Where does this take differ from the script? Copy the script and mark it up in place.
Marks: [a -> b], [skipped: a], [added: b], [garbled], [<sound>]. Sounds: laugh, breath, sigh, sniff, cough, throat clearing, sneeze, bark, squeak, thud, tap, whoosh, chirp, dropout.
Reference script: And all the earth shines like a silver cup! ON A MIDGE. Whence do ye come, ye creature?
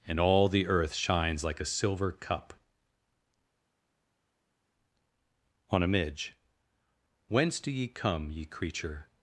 And all the earth shines like a silver cup! ON A MIDGE. Whence do ye come, ye creature?